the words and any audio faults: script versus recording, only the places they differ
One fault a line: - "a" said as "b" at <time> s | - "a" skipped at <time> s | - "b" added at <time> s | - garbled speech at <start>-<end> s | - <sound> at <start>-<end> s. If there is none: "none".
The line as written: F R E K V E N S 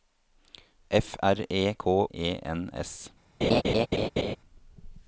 - "V" skipped at 2.1 s
- laugh at 3.4-4.4 s